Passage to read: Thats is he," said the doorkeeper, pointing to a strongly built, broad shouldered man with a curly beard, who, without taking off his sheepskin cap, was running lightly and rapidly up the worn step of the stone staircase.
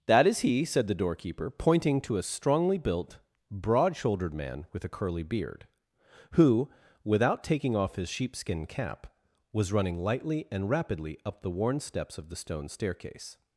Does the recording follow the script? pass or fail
fail